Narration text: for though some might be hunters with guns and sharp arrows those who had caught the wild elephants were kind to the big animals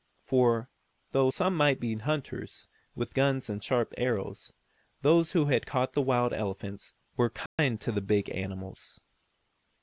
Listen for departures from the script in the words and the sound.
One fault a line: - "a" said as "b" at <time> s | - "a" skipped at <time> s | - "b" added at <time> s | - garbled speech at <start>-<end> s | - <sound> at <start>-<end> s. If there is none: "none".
- dropout at 7.5-7.6 s